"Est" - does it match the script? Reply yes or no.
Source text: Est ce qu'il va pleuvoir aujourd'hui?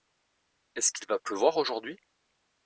yes